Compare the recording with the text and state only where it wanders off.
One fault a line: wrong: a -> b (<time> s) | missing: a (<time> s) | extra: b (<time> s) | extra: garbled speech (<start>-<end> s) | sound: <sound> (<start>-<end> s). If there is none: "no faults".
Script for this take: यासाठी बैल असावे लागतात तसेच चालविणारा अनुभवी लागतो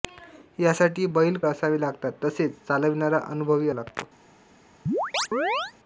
sound: chirp (4.9-5.7 s)